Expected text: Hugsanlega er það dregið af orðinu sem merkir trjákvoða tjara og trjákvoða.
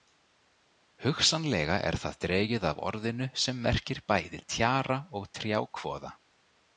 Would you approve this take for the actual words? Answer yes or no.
no